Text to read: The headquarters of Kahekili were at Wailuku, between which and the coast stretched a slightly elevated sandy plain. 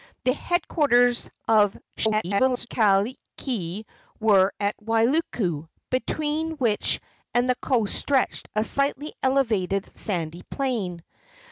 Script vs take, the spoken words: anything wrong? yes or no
yes